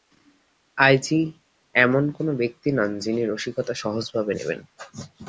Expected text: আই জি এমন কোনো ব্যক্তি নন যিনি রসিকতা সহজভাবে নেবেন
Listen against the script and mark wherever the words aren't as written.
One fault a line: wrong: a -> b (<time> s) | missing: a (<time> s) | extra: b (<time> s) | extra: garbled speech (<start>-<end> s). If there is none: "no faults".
no faults